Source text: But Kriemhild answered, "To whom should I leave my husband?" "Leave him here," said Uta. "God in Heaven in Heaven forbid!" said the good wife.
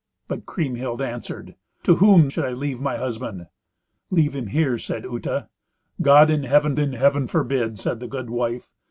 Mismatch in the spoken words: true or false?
false